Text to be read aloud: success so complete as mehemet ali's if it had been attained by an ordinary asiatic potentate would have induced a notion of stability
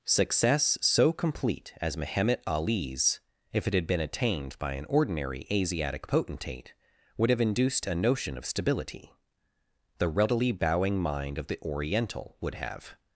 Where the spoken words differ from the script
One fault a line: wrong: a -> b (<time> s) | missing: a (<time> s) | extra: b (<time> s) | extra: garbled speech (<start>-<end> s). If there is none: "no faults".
extra: the readily bowing mind of the oriental would have (10.0 s)